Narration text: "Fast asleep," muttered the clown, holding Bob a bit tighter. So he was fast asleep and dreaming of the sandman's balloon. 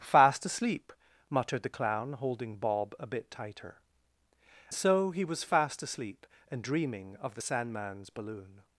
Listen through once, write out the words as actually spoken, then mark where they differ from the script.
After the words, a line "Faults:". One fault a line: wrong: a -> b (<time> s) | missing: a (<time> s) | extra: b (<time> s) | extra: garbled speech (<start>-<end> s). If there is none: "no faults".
"Fast asleep," muttered the clown, holding Bob a bit tighter. So he was fast asleep and dreaming of the sandman's balloon.
Faults:
no faults